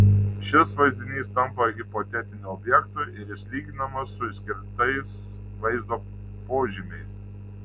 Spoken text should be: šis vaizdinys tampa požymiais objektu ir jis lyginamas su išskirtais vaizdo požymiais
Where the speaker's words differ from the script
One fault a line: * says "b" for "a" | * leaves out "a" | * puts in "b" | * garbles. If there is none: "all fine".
* says "hipotetiniu" for "požymiais"